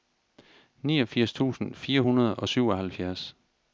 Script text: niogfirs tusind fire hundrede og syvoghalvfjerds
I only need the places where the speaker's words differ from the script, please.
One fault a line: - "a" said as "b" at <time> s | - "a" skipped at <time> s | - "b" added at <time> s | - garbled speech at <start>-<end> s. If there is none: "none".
none